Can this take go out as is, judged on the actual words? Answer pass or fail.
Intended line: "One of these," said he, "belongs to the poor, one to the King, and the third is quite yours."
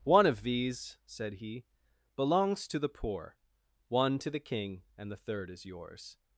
fail